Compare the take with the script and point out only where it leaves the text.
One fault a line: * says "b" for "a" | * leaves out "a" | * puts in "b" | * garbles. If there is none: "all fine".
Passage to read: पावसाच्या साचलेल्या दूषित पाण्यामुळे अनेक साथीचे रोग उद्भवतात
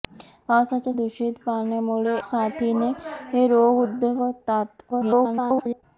* leaves out "साचलेल्या"
* leaves out "अनेक"
* garbles